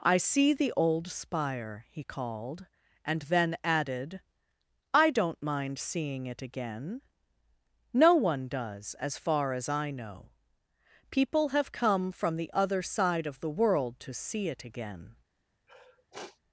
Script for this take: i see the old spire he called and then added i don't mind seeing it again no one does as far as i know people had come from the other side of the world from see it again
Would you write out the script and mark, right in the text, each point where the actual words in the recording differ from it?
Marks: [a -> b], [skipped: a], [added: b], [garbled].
i see the old spire he called and then added i don't mind seeing it again no one does as far as i know people [had -> have] come from the other side of the world [from -> to] see it again